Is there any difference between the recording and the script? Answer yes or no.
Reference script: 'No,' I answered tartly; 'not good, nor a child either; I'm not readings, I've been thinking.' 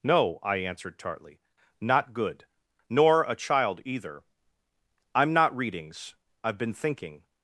no